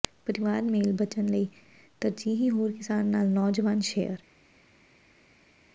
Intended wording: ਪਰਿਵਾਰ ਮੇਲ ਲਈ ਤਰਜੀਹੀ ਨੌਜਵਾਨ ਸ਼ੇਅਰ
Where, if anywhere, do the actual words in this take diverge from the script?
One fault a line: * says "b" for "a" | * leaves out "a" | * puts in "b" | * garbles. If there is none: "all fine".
* puts in "ਬਚਣ"
* puts in "ਹੋਰ ਕਿਸਾਨ ਨਾਲ"